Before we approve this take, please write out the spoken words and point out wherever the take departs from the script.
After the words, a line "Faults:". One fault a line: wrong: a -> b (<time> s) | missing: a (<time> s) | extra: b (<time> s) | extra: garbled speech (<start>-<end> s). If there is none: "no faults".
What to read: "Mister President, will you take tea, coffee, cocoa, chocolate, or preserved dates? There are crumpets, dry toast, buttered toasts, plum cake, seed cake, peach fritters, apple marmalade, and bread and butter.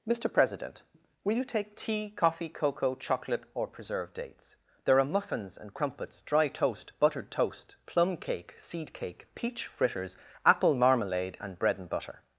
"Mister President, will you take tea, coffee, cocoa, chocolate, or preserved dates? There are muffins and crumpets, dry toast, buttered toast, plum cake, seed cake, peach fritters, apple marmalade, and bread and butter.
Faults:
extra: muffins and (5.1 s)
wrong: toasts -> toast (7.3 s)